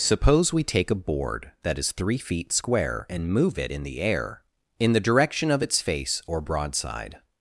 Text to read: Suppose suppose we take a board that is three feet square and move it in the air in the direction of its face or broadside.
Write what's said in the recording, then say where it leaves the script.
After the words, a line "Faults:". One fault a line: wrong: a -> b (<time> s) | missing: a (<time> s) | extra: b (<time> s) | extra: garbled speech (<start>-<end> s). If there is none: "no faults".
Suppose we take a board that is three feet square and move it in the air in the direction of its face or broadside.
Faults:
missing: suppose (0.5 s)